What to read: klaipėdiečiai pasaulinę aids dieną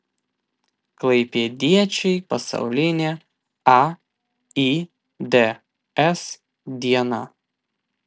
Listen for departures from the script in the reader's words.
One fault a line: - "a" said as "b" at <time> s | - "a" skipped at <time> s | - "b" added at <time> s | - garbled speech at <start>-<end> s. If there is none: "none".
none